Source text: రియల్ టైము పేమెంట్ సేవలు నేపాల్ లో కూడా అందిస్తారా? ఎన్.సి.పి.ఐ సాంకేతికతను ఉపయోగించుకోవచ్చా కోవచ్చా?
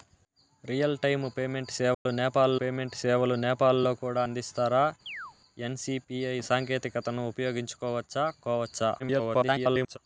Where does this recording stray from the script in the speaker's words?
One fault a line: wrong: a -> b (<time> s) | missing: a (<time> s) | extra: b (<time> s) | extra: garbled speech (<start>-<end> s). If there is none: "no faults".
extra: పేమెంట్ సేవలు నేపాల్ (2.6 s)
extra: garbled speech (9.0-10.0 s)